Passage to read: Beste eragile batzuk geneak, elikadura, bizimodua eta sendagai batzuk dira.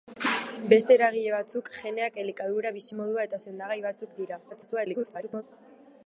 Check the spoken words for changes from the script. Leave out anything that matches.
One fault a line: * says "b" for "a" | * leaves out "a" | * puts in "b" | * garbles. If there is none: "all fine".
* garbles